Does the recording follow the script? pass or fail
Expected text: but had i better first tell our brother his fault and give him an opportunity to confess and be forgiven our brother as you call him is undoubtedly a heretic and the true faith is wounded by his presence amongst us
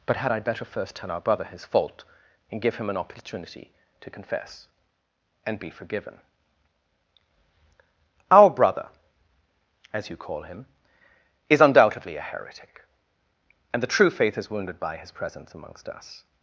pass